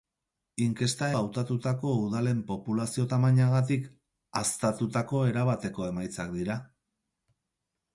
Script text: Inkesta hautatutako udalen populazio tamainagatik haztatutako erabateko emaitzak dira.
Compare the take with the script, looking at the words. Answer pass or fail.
pass